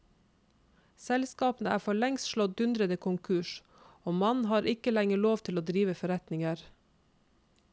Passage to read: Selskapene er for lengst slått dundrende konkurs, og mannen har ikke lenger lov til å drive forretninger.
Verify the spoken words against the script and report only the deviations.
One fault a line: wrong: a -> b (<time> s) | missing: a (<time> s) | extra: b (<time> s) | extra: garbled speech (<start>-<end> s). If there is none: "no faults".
no faults